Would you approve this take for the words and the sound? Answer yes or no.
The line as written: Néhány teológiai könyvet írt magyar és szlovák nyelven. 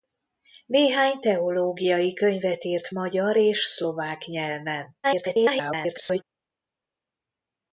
no